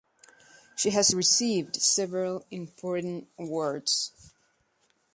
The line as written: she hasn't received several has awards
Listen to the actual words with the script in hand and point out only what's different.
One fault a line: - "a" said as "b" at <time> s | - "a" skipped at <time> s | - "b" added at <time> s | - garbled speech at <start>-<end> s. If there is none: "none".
- "hasn't" said as "has" at 0.9 s
- "has" said as "important" at 2.5 s